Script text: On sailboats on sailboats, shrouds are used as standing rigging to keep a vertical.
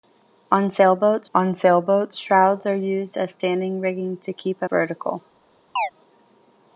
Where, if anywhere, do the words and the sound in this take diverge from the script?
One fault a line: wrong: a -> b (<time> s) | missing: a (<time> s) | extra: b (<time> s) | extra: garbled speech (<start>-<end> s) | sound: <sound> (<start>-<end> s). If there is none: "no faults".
sound: chirp (5.8-5.9 s)